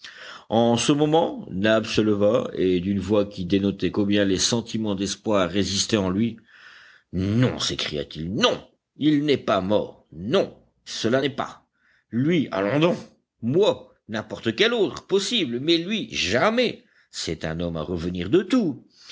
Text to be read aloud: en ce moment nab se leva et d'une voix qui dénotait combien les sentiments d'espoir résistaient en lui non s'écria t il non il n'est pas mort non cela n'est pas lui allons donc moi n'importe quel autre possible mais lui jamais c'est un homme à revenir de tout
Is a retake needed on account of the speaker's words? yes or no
no